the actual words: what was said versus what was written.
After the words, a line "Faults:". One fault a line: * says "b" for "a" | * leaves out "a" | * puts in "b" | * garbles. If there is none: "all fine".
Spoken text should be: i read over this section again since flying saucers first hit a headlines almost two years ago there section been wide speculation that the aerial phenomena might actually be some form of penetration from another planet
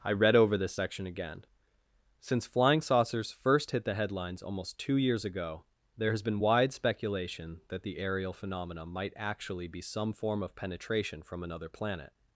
i read over this section again since flying saucers first hit the headlines almost two years ago there has been wide speculation that the aerial phenomena might actually be some form of penetration from another planet
Faults:
* says "the" for "a"
* says "has" for "section"